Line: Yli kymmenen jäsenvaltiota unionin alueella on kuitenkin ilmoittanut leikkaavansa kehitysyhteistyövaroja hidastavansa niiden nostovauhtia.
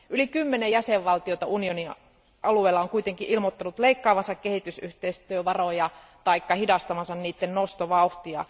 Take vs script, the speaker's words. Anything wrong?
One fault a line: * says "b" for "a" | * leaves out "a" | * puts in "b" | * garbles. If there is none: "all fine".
* puts in "tai"